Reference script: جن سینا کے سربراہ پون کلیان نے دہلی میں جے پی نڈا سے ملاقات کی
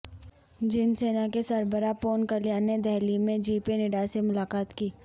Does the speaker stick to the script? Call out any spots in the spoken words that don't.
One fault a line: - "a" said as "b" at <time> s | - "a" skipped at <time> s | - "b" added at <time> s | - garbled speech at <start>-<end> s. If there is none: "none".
none